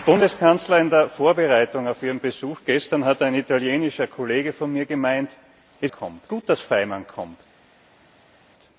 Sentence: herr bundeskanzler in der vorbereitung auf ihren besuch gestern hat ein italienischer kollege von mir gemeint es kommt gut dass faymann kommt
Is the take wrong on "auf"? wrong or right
right